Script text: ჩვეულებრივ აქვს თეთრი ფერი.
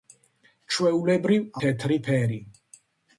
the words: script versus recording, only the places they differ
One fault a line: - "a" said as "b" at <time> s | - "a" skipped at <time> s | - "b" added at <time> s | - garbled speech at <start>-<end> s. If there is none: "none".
- "აქვს" skipped at 1.4 s